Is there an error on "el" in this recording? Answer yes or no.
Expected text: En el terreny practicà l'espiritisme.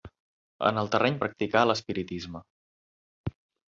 no